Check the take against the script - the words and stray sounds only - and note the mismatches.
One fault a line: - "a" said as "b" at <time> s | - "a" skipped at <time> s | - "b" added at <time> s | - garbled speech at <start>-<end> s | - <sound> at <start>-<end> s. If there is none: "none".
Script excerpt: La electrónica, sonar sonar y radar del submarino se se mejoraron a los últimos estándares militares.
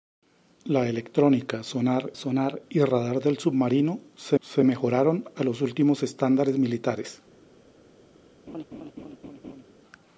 - laugh at 8.5-9.6 s